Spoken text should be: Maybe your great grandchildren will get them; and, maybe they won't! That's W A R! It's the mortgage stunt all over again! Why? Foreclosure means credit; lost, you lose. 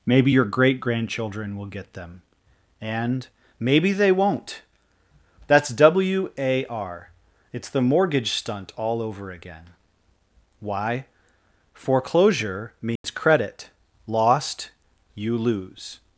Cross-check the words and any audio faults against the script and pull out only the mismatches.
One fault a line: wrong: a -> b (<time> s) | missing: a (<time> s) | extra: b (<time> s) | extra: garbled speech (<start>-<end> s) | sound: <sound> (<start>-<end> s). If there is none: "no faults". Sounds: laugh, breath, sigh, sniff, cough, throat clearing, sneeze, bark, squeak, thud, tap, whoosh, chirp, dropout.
sound: dropout (13.0-13.0 s)